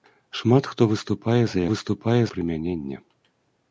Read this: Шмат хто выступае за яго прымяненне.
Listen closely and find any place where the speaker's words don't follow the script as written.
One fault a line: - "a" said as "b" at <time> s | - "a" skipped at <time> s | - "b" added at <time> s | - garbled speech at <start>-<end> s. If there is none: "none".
- "яго" said as "выступае" at 1.7 s